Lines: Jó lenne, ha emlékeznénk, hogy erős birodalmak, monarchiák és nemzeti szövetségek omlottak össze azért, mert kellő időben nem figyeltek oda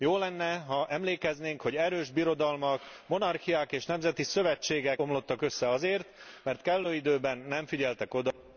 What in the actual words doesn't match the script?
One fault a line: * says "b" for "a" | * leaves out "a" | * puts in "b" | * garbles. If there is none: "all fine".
all fine